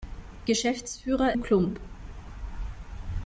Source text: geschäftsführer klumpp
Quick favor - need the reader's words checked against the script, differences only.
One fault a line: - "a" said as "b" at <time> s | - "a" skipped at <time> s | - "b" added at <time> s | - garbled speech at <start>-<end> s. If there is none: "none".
none